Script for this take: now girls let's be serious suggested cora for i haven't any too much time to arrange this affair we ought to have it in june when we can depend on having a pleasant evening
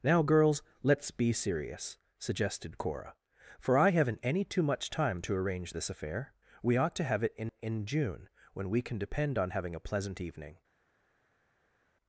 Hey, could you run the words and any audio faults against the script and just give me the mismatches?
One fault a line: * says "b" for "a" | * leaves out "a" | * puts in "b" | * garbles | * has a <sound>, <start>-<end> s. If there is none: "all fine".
* puts in "in"